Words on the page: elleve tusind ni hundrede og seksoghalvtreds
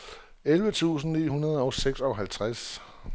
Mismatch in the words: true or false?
false